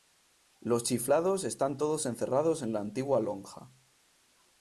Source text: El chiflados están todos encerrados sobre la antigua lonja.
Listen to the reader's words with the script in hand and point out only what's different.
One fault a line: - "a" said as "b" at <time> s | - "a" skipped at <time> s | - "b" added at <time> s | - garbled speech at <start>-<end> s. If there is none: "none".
- "El" said as "Los" at 0.6 s
- "sobre" said as "en" at 2.6 s